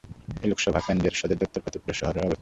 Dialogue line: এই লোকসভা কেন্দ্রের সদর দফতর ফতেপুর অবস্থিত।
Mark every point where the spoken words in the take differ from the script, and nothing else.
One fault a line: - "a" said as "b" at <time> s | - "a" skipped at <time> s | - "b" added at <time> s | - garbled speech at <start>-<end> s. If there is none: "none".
- "শহরে" added at 2.0 s